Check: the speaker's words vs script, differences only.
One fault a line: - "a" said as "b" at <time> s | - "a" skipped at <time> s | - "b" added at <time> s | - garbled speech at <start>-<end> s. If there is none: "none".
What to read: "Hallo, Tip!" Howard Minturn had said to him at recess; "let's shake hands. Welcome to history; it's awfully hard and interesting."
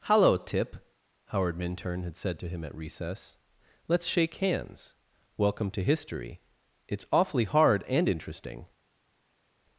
none